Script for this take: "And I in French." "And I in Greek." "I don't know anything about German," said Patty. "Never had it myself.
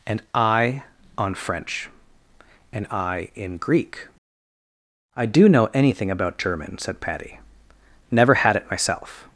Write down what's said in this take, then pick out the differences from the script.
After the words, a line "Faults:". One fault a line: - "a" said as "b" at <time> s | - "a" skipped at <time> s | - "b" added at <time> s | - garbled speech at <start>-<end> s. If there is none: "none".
"And I on French." "And I in Greek." "I do know anything about German," said Patty. "Never had it myself.
Faults:
- "in" said as "on" at 1.2 s
- "don't" said as "do" at 5.2 s